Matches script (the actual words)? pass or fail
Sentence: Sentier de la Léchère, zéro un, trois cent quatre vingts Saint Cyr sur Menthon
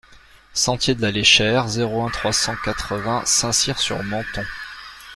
pass